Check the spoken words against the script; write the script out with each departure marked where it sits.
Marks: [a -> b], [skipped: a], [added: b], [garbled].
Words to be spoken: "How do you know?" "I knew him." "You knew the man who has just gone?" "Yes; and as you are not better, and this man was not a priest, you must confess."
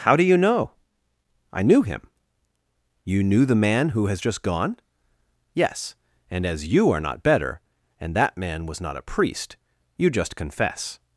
"How do you know?" "I knew him." "You knew the man who has just gone?" "Yes; and as you are not better, and [this -> that] man was not a priest, you [must -> just] confess."